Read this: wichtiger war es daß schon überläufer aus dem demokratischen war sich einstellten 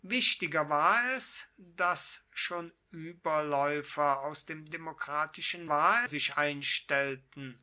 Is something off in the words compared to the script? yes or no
no